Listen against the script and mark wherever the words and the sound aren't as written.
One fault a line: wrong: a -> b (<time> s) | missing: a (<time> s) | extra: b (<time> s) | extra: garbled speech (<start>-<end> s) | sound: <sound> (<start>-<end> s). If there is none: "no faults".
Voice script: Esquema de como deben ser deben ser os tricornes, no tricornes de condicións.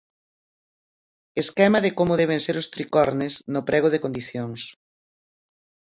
missing: deben ser (2.6 s)
wrong: tricornes -> prego (3.7 s)